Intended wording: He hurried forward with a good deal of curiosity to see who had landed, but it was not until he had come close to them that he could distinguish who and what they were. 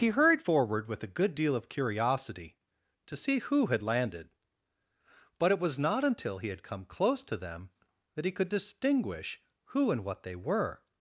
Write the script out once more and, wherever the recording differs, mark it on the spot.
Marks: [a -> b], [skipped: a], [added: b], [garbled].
He hurried forward with a good deal of curiosity to see who had landed, but it was not until he had come close to them that he could distinguish who and what they were.